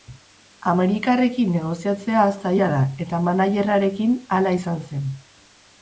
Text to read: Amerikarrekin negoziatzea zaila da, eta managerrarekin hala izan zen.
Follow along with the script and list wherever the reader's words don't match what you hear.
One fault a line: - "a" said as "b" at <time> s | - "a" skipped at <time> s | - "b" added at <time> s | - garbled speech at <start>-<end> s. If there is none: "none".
none